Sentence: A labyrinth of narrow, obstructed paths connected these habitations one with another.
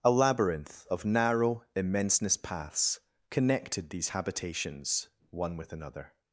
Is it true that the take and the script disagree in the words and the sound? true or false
true